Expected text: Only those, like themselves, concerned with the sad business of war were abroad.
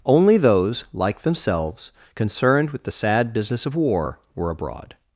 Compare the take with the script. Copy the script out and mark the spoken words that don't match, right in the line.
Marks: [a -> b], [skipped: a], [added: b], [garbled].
Only those, like themselves, concerned with the sad business of war were abroad.